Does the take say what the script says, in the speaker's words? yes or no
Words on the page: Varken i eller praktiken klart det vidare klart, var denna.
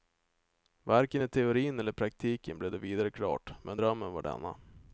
no